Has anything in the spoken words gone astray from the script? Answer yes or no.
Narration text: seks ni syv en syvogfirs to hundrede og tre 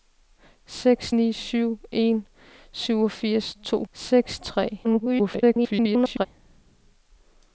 yes